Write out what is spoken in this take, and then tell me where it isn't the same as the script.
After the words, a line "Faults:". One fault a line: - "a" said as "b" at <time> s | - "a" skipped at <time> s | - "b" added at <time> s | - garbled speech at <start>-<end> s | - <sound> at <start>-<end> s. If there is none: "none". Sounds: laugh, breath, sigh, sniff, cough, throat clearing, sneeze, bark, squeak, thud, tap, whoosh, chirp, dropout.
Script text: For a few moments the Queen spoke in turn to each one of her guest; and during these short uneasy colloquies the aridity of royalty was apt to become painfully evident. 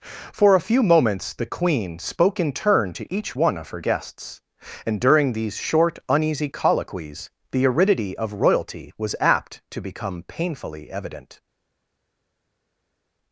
For a few moments the Queen spoke in turn to each one of her guests; and during these short uneasy colloquies the aridity of royalty was apt to become painfully evident.
Faults:
- "guest" said as "guests" at 3.8 s